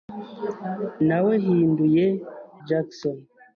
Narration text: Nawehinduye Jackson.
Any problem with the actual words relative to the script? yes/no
no